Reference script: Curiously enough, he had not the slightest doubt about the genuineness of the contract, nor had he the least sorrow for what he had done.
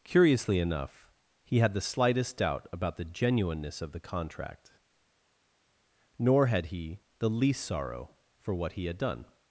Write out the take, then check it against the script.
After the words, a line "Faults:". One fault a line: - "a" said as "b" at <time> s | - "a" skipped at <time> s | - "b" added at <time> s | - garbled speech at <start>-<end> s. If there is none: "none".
Curiously enough, he had the slightest doubt about the genuineness of the contract, nor had he the least sorrow for what he had done.
Faults:
- "not" skipped at 1.7 s